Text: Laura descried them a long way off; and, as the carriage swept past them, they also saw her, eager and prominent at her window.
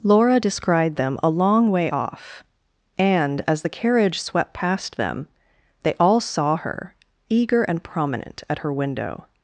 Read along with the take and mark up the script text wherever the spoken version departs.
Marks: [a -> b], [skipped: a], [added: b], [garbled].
Laura descried them a long way off; and, as the carriage swept past them, they [also -> all] saw her, eager and prominent at her window.